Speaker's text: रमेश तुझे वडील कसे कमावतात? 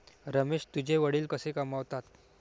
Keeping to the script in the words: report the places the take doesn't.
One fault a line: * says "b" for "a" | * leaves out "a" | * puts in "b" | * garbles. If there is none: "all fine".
all fine